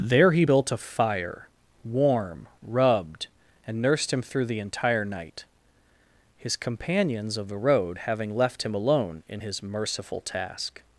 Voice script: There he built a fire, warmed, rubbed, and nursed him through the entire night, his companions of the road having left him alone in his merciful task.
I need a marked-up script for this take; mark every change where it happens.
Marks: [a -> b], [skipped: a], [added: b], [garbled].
There he built a fire, [warmed, -> warm] rubbed, and nursed him through the entire night, his companions of the road having left him alone in his merciful task.